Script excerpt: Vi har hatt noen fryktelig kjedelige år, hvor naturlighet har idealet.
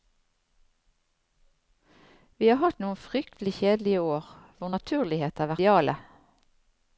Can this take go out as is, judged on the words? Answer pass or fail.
pass